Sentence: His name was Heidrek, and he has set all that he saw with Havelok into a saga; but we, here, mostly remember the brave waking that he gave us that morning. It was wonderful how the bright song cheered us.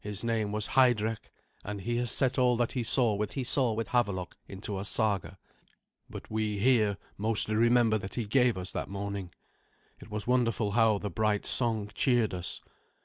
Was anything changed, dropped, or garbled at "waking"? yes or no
yes